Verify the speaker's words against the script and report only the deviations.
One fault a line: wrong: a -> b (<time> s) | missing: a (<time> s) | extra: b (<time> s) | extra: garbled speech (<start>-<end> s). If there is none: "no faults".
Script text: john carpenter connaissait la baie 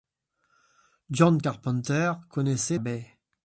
missing: la (2.8 s)